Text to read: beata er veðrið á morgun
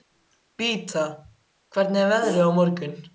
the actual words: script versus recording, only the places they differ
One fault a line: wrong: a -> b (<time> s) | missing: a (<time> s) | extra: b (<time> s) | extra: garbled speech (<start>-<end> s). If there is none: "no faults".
extra: hvernig (1.7 s)